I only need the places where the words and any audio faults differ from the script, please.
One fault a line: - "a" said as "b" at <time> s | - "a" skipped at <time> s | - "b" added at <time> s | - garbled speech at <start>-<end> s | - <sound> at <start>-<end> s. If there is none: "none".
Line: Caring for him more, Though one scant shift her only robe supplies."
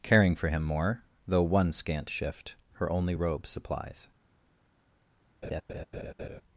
- laugh at 5.4-6.4 s